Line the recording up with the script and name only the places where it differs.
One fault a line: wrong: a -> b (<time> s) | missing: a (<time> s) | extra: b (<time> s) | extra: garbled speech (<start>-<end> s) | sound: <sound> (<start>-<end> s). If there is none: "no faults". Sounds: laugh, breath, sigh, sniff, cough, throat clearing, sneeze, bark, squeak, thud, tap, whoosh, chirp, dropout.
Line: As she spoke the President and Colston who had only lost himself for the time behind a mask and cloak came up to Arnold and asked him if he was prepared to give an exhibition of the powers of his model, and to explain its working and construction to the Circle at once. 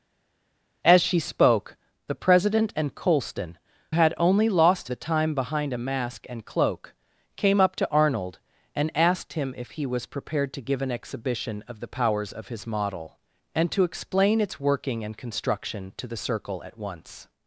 missing: who (3.6 s)
missing: himself for (4.9 s)